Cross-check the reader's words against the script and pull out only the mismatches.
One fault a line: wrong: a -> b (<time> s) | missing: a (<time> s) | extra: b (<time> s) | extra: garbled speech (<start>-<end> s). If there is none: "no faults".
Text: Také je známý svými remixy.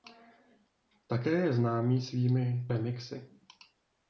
no faults